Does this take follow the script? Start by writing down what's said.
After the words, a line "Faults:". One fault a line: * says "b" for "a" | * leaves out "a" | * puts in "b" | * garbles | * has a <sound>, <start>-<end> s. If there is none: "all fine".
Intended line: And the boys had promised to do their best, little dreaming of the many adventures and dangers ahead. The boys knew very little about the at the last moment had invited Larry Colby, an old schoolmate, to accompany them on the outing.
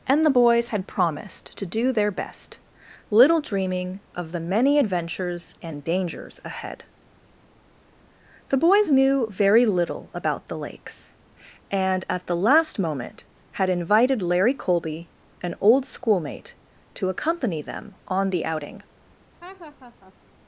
And the boys had promised to do their best, little dreaming of the many adventures and dangers ahead. The boys knew very little about the lakes, and at the last moment had invited Larry Colby, an old schoolmate, to accompany them on the outing.
Faults:
* puts in "lakes and"
* has a laugh, 19.4-20.1 s